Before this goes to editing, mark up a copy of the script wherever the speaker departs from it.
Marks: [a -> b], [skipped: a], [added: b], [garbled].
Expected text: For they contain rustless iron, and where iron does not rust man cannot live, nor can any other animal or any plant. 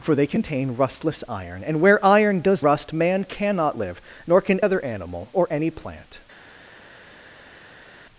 For they contain rustless iron, and where iron does [skipped: not] rust man cannot live, nor can [skipped: any] other animal or any plant.